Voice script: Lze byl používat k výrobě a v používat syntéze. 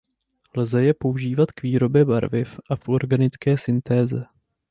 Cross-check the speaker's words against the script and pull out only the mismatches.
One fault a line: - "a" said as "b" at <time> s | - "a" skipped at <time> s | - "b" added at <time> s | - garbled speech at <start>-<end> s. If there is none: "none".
- "byl" said as "je" at 0.8 s
- "barviv" added at 2.0 s
- "používat" said as "organické" at 2.9 s